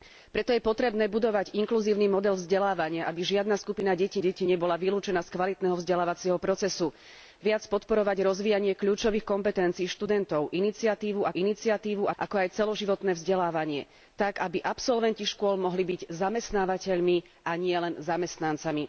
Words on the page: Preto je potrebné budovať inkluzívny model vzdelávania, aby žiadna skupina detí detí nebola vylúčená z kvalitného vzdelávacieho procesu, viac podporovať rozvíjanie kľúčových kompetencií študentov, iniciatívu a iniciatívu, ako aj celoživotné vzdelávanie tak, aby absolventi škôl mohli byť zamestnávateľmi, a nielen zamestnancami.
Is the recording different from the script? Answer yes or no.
no